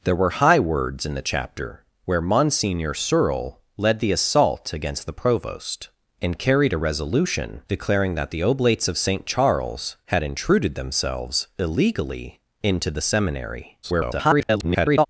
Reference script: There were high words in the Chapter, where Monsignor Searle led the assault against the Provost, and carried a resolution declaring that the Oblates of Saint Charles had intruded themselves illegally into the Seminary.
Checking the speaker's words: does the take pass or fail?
fail